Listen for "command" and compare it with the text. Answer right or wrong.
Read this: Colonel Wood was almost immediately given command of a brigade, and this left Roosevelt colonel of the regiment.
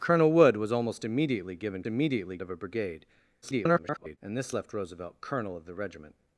wrong